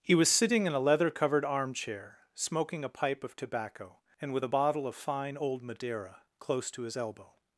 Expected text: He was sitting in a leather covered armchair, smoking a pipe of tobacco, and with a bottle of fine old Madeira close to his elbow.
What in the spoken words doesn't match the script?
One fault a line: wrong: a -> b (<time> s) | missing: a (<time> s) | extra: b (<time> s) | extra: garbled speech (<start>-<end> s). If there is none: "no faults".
no faults